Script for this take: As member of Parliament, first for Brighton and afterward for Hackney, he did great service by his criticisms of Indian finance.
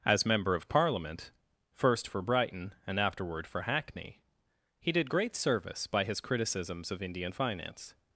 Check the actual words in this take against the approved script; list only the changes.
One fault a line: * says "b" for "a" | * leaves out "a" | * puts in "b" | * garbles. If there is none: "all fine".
all fine